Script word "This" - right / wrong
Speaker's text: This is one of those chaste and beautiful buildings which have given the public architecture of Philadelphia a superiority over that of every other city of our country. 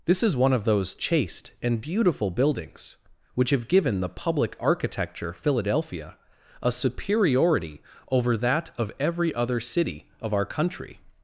right